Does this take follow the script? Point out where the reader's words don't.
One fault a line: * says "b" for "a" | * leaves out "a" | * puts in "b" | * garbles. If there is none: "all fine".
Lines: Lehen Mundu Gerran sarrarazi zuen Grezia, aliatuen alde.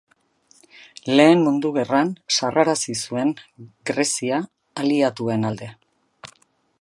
all fine